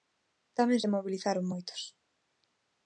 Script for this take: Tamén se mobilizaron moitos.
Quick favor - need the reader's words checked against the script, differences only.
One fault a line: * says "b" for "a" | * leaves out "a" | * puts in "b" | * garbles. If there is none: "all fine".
all fine